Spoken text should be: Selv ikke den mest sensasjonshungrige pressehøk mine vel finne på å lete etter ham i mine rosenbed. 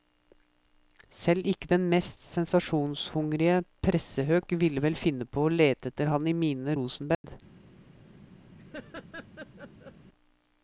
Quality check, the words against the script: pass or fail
fail